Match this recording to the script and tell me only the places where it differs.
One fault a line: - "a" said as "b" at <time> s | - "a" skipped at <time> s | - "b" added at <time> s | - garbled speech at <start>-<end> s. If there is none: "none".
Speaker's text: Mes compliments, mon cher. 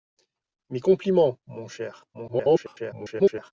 - garbled speech at 2.1-3.5 s